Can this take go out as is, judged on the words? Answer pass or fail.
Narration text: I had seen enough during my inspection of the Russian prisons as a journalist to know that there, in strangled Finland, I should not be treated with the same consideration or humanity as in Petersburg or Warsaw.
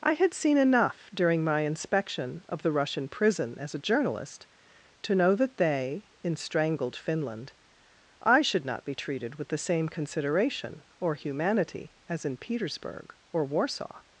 fail